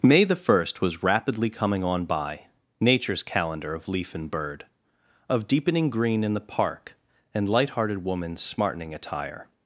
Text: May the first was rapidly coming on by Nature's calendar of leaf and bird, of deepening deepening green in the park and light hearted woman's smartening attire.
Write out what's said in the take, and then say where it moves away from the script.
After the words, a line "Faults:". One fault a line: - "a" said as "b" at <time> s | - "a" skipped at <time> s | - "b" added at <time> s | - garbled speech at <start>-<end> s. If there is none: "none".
May the first was rapidly coming on by Nature's calendar of leaf and bird, of deepening green in the park and light hearted woman's smartening attire.
Faults:
- "deepening" skipped at 5.9 s